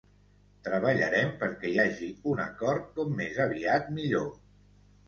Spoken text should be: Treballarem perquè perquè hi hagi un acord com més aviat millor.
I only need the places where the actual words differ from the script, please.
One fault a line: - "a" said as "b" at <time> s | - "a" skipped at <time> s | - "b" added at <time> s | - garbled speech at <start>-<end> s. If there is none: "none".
- "perquè" skipped at 1.7 s